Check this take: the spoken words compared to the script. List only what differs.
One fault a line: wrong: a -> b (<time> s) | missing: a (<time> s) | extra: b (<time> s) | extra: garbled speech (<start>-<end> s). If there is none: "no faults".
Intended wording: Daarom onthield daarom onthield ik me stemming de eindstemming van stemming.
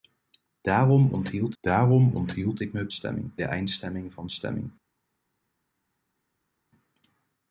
no faults